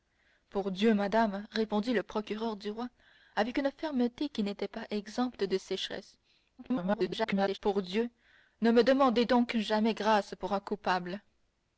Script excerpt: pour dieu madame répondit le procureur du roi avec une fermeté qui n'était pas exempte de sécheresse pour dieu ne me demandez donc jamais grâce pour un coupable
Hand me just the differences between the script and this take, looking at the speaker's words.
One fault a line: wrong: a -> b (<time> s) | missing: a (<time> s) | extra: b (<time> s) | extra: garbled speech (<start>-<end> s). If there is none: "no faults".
extra: garbled speech (6.6-7.6 s)